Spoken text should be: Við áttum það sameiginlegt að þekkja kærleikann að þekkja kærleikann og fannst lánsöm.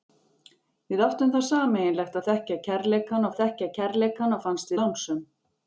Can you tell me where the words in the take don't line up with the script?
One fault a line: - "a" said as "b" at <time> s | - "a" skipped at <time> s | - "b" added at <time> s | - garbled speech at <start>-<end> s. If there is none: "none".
none